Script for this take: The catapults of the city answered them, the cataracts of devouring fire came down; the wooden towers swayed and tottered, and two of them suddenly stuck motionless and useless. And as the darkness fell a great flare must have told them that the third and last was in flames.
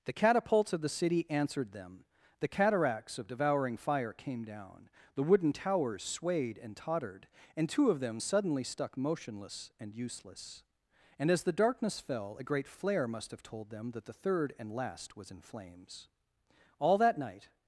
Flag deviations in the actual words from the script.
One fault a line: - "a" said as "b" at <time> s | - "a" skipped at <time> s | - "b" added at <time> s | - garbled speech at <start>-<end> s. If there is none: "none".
- "All that night" added at 16.8 s